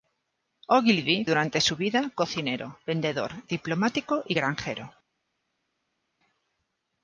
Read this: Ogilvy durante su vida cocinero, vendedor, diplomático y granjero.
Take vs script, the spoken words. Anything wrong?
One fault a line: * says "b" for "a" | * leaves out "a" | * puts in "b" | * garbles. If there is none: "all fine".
all fine